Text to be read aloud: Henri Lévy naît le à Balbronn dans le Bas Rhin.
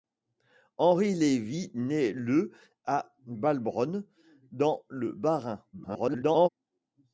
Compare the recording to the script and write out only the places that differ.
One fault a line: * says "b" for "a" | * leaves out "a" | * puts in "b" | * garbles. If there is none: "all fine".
* garbles